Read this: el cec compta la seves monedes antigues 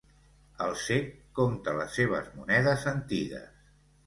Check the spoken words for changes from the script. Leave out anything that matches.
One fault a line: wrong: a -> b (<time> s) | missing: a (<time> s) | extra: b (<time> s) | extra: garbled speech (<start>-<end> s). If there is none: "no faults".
wrong: la -> les (1.8 s)